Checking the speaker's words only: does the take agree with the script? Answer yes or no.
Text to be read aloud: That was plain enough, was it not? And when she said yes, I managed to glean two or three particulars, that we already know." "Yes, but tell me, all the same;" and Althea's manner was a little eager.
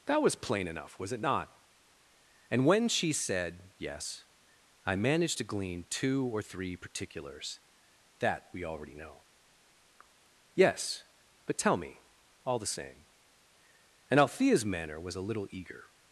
yes